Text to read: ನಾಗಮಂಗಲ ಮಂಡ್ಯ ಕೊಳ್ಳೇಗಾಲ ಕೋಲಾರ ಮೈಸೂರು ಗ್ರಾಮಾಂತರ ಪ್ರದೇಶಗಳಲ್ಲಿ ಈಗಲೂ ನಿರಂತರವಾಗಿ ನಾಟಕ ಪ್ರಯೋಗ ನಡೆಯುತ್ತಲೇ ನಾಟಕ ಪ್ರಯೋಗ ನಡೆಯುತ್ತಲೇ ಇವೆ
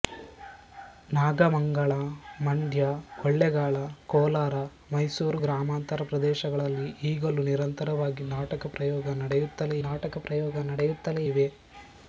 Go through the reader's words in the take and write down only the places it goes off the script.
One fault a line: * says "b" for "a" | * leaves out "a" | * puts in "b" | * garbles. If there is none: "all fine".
all fine